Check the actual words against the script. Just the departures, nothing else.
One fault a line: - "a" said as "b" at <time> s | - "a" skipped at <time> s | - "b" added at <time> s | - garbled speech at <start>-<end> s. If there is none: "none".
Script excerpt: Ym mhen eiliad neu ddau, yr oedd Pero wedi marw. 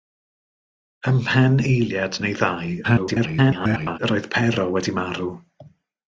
- garbled speech at 2.8-4.0 s